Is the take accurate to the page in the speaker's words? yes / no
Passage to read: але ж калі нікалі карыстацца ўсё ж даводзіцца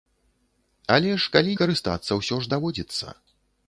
no